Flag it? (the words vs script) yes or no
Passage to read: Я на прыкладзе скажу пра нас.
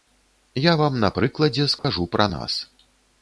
yes